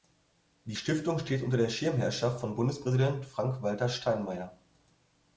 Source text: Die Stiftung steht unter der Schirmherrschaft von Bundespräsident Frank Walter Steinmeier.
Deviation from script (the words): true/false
false